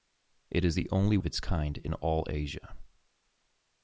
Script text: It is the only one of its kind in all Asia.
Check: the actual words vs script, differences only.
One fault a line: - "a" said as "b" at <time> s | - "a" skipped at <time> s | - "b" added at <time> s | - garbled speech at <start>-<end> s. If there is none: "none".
- "one" skipped at 1.2 s